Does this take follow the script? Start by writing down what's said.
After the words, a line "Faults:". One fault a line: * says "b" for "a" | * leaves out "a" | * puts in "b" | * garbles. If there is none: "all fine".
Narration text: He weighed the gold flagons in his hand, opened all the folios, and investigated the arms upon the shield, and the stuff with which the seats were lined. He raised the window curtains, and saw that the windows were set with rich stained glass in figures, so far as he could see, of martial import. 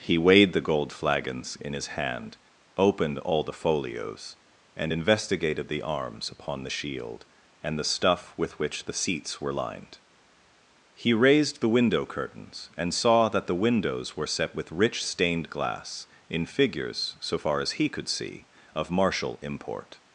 He weighed the gold flagons in his hand, opened all the folios, and investigated the arms upon the shield, and the stuff with which the seats were lined. He raised the window curtains, and saw that the windows were set with rich stained glass in figures, so far as he could see, of martial import.
Faults:
all fine